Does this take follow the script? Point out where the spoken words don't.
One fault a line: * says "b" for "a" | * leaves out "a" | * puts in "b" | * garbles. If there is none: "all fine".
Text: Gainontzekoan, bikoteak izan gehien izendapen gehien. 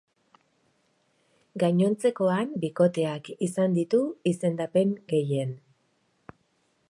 * says "ditu" for "gehien"